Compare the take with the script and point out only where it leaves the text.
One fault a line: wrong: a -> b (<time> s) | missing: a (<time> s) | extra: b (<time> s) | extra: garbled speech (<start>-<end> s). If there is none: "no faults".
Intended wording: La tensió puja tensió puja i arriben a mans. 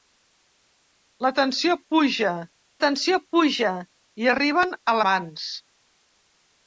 no faults